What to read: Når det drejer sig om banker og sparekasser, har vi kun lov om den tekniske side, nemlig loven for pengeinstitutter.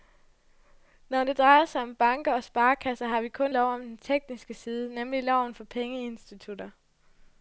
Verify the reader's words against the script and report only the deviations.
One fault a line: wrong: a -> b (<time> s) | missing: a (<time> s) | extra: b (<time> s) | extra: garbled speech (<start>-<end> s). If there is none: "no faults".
no faults